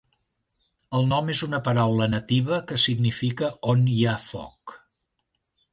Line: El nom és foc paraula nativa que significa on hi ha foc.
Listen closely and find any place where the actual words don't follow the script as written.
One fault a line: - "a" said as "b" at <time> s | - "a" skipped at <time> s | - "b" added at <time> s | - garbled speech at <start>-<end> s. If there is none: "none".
- "foc" said as "una" at 1.5 s